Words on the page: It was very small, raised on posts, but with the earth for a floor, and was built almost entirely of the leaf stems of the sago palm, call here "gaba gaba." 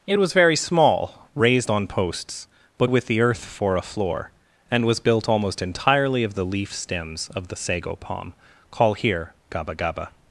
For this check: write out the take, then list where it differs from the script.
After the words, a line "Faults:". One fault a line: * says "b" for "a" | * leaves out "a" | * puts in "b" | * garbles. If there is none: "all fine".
It was very small, raised on posts, but with the earth for a floor, and was built almost entirely of the leaf stems of the sago palm, call here "gaba gaba."
Faults:
all fine